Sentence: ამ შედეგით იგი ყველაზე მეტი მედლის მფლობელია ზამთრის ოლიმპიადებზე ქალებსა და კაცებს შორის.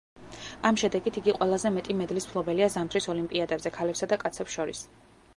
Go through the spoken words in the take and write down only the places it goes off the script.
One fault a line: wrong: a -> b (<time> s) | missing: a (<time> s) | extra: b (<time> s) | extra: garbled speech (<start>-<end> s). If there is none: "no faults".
no faults